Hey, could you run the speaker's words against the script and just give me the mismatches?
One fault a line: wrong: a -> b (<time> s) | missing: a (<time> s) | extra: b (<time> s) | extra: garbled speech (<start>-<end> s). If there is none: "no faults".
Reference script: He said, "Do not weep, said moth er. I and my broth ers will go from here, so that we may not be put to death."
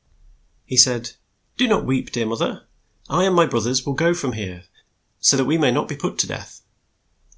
wrong: said -> dear (2.1 s)